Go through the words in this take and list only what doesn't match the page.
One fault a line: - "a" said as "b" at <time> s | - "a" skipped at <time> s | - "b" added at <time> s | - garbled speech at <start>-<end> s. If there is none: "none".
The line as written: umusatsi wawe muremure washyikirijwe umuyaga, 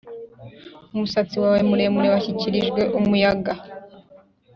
none